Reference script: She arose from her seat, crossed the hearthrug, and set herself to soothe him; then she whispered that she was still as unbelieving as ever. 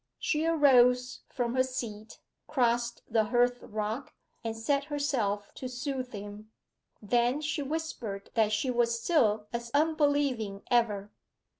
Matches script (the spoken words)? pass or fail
fail